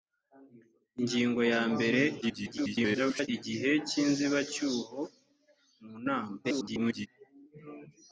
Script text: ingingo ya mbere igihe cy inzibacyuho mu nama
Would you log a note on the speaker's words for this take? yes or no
yes